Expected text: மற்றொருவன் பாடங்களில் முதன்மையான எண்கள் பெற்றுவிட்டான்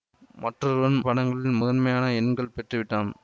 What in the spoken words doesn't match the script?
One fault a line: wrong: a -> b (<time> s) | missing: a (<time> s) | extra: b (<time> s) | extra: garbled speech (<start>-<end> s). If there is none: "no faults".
no faults